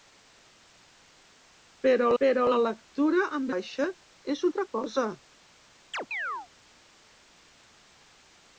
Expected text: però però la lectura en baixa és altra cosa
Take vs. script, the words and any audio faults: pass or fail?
fail